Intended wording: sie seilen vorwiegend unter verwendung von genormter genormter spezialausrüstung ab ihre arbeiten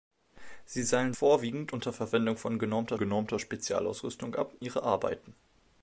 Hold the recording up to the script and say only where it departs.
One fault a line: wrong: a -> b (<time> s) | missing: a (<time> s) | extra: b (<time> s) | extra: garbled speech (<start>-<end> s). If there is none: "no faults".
no faults